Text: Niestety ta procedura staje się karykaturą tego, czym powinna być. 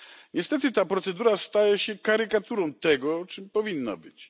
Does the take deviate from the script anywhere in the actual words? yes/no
no